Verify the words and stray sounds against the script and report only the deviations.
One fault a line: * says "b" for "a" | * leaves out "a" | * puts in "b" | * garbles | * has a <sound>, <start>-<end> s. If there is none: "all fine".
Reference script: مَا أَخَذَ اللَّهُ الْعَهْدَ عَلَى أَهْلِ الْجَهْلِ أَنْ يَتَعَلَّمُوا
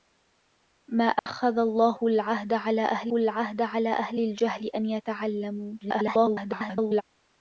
* has a dropout, 1.2-1.3 s
* puts in "الْعَهْدَ عَلَى أَهْلِ"
* garbles